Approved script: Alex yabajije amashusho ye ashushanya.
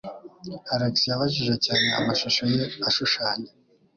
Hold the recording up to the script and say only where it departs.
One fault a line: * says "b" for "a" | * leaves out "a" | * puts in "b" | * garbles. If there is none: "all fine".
* puts in "cyane"